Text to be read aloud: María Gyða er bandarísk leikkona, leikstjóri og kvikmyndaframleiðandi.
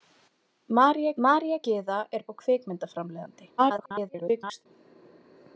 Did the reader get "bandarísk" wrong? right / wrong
wrong